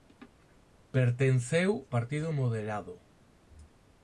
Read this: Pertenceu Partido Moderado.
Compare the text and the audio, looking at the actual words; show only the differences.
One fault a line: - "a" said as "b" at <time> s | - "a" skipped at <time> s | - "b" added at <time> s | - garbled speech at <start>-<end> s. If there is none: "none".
none